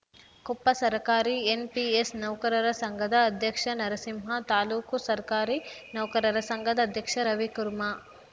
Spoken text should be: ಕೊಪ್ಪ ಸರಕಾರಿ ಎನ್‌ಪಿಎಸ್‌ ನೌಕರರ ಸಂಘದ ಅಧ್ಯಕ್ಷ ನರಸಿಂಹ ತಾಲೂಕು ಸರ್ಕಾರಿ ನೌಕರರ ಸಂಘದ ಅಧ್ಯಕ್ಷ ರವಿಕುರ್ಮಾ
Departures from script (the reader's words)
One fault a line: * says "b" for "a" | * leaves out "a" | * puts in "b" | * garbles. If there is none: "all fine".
all fine